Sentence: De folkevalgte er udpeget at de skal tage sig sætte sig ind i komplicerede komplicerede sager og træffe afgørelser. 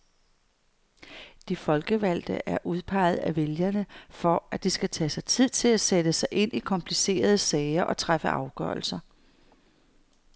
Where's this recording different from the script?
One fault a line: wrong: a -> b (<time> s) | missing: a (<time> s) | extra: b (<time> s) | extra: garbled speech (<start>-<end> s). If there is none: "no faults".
extra: af vælgerne for (3.2 s)
extra: tid til at (5.2 s)
missing: komplicerede (7.4 s)